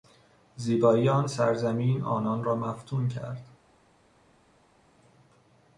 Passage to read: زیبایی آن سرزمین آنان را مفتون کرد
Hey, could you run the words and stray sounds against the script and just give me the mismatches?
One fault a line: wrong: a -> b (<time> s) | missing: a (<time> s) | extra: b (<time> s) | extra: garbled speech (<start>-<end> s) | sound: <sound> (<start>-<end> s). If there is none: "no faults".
no faults